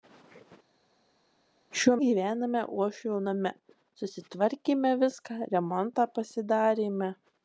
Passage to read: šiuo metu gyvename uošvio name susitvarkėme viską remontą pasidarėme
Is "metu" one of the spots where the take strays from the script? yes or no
yes